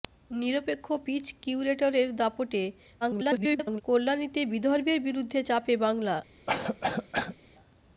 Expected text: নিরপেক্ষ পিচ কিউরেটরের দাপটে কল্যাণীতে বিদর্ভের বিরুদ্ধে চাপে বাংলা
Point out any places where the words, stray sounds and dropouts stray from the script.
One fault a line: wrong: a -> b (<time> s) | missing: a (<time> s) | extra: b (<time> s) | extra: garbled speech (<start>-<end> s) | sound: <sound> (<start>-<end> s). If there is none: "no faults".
extra: garbled speech (3.0-3.8 s)
sound: cough (6.5-7.4 s)